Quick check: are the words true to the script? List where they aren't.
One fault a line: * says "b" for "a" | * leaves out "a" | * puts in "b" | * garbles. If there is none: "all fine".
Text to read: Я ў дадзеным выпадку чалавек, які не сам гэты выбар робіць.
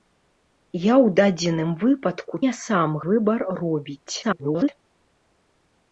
* leaves out "чалавек які"
* leaves out "гэты"
* garbles